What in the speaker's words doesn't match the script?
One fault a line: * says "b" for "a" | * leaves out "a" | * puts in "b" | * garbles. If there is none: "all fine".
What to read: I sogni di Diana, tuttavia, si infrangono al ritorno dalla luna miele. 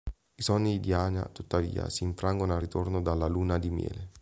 * puts in "di"